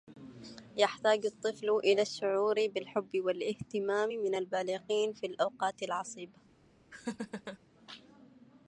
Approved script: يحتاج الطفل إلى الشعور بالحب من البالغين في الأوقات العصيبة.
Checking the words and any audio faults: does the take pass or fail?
fail